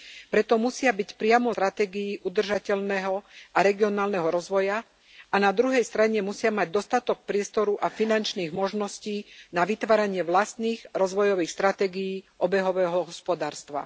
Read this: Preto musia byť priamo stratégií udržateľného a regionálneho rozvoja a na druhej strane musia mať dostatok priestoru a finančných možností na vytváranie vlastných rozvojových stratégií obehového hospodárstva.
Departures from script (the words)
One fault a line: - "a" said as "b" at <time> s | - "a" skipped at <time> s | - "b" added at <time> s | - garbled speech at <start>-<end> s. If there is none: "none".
none